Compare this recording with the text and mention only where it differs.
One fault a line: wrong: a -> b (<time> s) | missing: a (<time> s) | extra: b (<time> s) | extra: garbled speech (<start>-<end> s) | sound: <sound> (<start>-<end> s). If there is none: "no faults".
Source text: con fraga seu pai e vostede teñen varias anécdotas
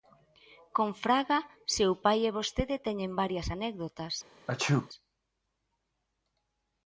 sound: sneeze (4.5-4.9 s)